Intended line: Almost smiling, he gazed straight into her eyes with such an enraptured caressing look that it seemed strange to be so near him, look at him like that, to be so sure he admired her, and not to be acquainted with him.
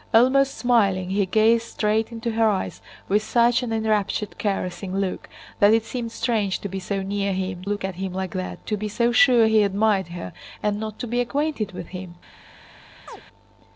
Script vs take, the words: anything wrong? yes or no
no